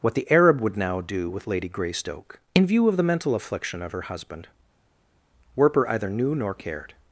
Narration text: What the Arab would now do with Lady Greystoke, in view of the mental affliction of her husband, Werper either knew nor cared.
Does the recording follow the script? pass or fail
pass